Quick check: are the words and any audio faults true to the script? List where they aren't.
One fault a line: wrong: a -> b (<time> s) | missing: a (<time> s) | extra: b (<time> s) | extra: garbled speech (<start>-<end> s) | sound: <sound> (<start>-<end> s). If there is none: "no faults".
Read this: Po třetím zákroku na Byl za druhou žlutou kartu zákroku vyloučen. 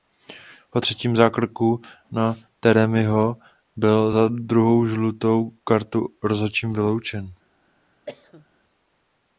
extra: Taremiho (2.6 s)
wrong: zákroku -> rozhodčím (6.2 s)
sound: cough (8.1-8.5 s)